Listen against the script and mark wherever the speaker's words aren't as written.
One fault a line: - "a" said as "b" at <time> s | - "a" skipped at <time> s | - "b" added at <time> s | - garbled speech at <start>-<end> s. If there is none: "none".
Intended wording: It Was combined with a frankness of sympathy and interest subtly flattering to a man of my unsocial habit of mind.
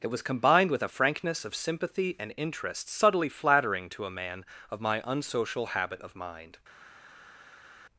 none